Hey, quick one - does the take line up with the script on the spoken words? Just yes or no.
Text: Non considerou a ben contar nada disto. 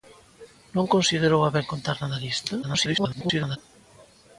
no